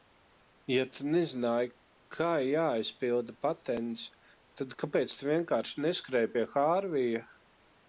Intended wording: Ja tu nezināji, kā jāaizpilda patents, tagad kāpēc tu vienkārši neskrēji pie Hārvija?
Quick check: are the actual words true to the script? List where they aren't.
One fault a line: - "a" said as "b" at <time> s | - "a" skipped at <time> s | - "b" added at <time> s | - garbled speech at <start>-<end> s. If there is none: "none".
- "tagad" said as "tad" at 4.6 s